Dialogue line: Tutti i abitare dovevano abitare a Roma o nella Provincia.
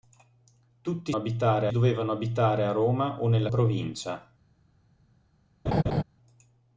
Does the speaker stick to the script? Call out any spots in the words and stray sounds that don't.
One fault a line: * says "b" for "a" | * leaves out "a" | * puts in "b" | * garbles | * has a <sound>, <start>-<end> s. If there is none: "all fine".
* has a laugh, 5.7-6.0 s